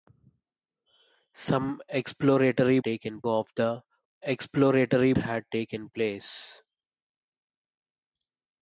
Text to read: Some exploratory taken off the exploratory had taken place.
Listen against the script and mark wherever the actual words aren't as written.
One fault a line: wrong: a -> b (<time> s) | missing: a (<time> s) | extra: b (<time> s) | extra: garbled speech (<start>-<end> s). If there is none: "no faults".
no faults